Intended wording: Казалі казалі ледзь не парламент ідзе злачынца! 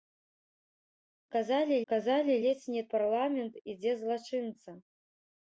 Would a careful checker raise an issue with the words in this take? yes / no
no